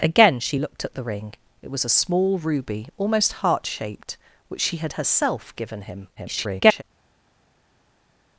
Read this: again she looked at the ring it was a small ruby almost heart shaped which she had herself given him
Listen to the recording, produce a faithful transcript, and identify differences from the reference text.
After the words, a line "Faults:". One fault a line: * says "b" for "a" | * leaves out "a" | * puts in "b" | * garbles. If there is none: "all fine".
again she looked at the ring it was a small ruby almost heart shaped which she had herself given him [garbled]
Faults:
* garbles